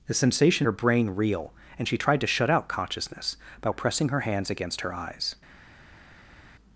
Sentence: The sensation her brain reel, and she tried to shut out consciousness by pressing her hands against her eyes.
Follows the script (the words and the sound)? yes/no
yes